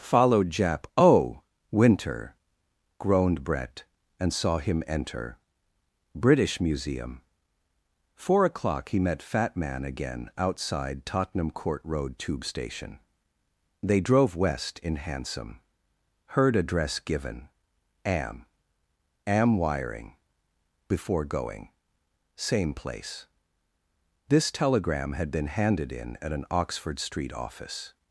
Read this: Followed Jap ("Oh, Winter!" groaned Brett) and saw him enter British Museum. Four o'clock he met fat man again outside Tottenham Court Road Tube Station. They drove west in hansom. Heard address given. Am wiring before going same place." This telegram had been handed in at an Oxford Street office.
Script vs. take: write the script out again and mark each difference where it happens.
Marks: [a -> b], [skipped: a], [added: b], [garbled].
Followed Jap ("Oh, Winter!" groaned Brett) and saw him enter British Museum. Four o'clock he met fat man again outside Tottenham Court Road Tube Station. They drove west in hansom. Heard address given. Am [added: Am] wiring before going same place." This telegram had been handed in at an Oxford Street office.